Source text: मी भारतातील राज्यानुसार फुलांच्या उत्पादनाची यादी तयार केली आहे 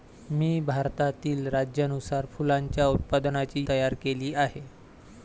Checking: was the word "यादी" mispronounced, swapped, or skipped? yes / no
yes